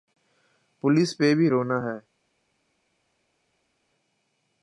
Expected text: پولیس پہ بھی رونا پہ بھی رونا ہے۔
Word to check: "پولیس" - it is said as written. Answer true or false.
true